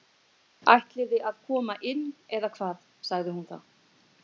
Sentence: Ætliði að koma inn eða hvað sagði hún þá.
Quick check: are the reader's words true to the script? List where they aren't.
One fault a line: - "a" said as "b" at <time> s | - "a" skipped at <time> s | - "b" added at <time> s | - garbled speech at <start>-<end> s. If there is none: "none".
none